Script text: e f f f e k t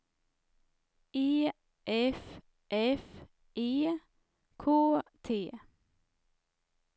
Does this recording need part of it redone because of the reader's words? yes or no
yes